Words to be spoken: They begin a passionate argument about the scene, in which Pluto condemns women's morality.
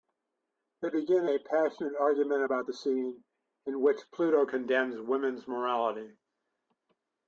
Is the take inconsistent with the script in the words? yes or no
no